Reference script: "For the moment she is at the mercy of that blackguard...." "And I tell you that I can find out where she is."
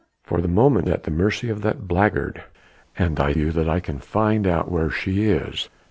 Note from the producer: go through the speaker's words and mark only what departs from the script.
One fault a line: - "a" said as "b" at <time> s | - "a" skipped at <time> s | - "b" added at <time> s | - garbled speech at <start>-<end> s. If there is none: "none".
- "she is" skipped at 0.9 s
- "tell" skipped at 3.3 s